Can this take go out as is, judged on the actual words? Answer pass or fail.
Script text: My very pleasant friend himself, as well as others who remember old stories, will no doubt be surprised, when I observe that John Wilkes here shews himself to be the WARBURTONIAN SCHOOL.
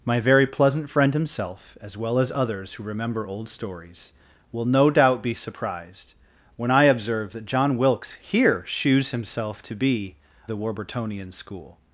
pass